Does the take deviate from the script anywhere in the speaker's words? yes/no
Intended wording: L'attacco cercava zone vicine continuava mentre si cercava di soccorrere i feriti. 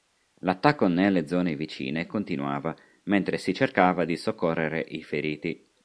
yes